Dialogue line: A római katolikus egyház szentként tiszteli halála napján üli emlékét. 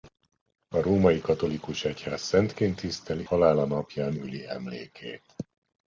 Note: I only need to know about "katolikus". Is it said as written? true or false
true